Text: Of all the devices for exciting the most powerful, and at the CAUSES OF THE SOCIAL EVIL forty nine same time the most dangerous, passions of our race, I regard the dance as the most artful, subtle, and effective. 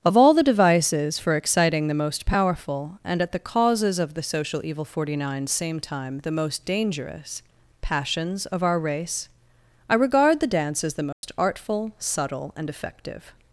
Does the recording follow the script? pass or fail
pass